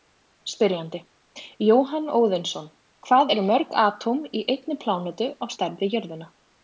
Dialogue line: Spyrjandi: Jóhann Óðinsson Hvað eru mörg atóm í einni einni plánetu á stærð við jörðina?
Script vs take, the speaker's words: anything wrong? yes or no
yes